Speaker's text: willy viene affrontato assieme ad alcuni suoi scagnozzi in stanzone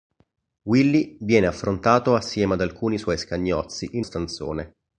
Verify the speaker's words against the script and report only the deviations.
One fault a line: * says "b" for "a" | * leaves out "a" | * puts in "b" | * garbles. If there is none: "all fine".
all fine